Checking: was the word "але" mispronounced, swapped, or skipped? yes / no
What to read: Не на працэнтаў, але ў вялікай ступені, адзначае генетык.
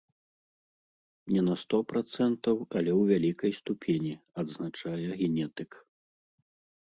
no